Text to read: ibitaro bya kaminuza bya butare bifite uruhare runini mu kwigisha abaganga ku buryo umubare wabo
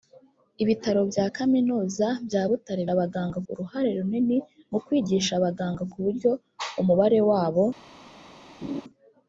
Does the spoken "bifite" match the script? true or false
false